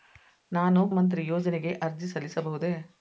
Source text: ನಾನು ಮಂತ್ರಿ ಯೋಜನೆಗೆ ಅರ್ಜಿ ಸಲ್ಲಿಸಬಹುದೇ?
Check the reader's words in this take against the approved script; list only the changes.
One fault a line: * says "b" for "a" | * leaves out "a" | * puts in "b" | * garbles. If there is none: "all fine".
all fine